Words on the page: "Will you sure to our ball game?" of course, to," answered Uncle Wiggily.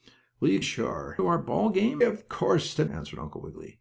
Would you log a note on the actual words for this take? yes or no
no